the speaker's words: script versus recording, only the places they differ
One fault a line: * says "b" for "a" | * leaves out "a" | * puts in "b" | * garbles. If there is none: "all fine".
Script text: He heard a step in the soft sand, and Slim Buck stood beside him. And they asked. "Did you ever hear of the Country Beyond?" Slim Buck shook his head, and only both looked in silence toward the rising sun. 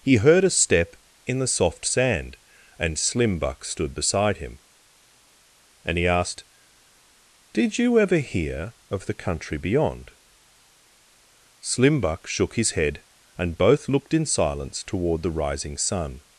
* says "he" for "they"
* leaves out "only"